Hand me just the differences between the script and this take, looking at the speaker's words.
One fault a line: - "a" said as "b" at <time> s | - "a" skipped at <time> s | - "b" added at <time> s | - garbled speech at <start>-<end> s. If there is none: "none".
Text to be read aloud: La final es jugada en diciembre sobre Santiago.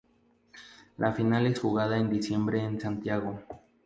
- "sobre" said as "en" at 2.6 s